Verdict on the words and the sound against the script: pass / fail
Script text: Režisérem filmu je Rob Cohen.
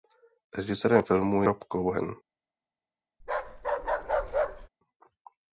fail